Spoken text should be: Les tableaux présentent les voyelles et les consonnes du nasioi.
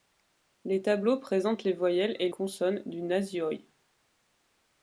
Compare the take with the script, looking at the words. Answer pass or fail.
fail